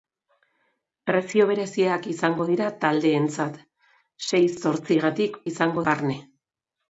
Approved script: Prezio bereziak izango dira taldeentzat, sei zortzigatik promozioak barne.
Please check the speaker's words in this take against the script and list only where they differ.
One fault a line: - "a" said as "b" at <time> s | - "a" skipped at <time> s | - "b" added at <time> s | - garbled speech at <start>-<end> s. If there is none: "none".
- "promozioak" said as "izango" at 5.5 s